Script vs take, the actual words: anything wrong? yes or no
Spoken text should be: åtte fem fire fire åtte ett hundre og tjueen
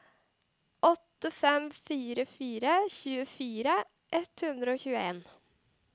yes